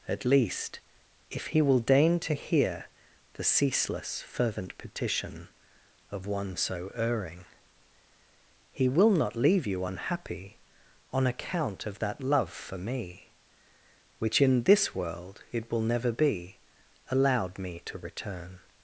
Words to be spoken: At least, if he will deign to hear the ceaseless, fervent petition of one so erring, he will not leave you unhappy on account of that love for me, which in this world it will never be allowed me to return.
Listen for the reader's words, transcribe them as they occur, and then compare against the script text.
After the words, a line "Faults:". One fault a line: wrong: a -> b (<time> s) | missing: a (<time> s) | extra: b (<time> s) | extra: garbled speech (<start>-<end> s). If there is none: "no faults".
At least, if he will deign to hear the ceaseless, fervent petition of one so erring, he will not leave you unhappy on account of that love for me, which in this world it will never be allowed me to return.
Faults:
no faults